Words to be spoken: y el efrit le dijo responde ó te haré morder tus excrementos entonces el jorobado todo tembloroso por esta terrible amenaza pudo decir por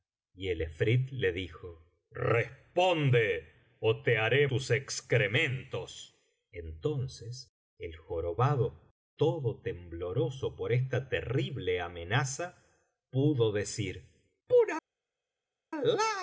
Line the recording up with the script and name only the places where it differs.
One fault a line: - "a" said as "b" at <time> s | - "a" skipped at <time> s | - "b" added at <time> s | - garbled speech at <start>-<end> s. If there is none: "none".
- "morder" skipped at 4.5 s